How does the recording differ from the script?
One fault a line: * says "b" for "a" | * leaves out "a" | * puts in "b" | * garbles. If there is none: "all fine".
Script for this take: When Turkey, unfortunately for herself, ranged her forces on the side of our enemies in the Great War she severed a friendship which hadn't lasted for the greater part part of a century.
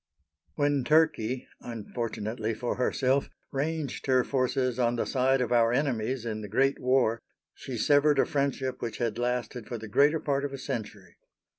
* says "had" for "hadn't"
* leaves out "part"